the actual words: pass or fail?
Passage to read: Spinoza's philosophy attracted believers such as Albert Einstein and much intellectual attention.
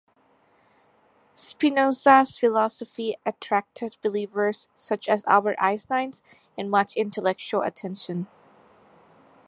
pass